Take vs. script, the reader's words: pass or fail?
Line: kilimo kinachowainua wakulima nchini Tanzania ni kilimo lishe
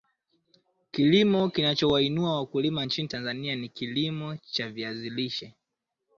fail